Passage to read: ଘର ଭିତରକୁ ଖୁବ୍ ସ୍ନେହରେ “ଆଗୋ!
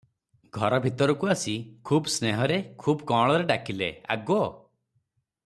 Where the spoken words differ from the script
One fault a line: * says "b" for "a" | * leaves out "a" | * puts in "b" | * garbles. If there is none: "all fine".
* puts in "ଆସି"
* puts in "ଖୁବ୍ କଅଁଳରେ ଡାକିଲେ"